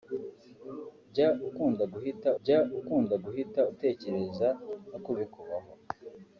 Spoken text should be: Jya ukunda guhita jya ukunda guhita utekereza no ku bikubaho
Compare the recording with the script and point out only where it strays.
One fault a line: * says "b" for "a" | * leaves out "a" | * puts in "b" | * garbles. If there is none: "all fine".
all fine